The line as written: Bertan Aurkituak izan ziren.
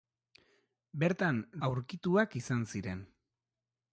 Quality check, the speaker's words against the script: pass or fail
pass